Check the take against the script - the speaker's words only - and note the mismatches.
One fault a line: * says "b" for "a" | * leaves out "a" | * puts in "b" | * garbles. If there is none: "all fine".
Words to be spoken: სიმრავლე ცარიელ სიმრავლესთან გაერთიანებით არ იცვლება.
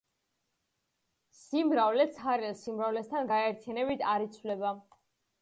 all fine